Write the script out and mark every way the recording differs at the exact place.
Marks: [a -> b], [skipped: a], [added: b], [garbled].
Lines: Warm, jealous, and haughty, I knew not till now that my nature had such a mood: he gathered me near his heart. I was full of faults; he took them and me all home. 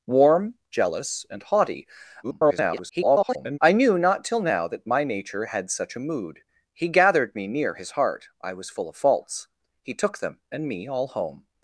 Warm, jealous, and haughty, [garbled] I knew not till now that my nature had such a mood: he gathered me near his heart. I was full of faults; he took them and me all home.